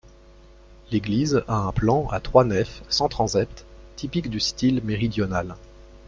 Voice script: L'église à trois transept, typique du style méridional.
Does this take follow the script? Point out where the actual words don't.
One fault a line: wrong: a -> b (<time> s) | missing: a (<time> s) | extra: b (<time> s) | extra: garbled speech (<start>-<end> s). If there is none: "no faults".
extra: a un plan (1.5 s)
extra: nefs sans (2.4 s)